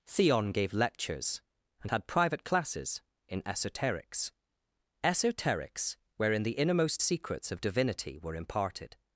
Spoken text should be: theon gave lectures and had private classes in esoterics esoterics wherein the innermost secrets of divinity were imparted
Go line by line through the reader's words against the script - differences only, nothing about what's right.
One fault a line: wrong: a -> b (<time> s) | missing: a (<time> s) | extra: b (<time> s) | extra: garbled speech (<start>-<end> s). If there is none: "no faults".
no faults